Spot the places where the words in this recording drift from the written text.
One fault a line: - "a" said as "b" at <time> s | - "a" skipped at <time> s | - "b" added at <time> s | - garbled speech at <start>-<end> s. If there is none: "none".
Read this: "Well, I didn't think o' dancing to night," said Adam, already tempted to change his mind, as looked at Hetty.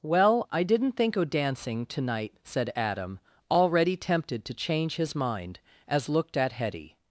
none